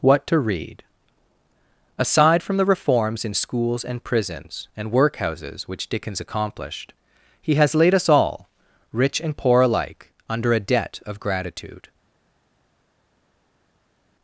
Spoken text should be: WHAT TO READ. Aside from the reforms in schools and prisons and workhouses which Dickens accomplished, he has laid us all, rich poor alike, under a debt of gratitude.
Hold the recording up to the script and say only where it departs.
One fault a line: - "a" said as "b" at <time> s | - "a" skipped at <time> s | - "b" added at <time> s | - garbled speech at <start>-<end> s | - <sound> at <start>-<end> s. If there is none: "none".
- "and" added at 9.2 s